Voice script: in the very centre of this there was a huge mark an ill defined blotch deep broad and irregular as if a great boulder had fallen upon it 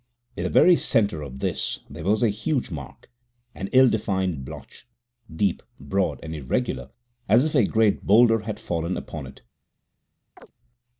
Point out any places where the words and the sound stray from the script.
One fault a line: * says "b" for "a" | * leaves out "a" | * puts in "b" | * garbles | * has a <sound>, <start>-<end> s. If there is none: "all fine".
* has a chirp, 10.4-10.5 s